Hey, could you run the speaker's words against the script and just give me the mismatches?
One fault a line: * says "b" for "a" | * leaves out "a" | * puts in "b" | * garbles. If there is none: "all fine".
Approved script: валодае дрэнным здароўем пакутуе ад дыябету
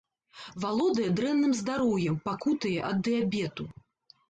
all fine